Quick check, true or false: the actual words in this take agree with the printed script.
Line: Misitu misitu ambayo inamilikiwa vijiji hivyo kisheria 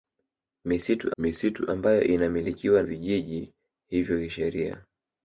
true